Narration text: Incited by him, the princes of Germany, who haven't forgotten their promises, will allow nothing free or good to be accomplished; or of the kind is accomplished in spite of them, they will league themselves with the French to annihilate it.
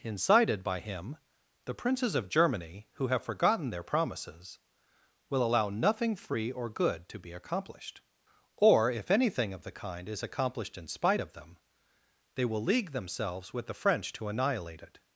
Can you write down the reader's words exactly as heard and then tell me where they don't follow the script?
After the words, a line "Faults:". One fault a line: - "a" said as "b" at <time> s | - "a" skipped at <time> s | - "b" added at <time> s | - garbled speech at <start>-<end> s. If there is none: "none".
Incited by him, the princes of Germany, who have forgotten their promises, will allow nothing free or good to be accomplished; or if anything of the kind is accomplished in spite of them, they will league themselves with the French to annihilate it.
Faults:
- "haven't" said as "have" at 3.1 s
- "if anything" added at 8.9 s